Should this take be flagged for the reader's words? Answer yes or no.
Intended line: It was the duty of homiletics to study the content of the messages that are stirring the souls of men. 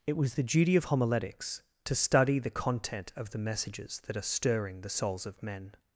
no